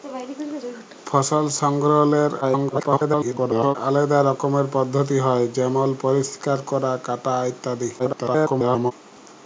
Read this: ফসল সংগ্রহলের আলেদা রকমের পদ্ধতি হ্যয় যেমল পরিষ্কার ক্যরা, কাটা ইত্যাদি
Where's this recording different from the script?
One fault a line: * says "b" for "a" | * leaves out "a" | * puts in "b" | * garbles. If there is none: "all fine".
* garbles
* garbles